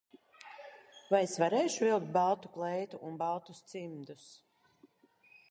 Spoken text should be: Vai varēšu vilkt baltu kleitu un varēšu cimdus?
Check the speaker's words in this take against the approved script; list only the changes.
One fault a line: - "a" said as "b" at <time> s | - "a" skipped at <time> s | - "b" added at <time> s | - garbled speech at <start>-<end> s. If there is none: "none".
- "es" added at 1.2 s
- "varēšu" said as "baltus" at 3.2 s